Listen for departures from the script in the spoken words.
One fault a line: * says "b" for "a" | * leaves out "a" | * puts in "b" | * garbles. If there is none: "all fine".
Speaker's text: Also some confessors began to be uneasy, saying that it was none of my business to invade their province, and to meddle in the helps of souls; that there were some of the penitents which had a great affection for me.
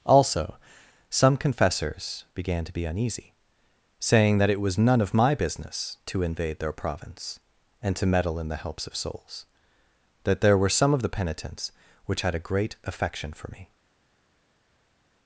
all fine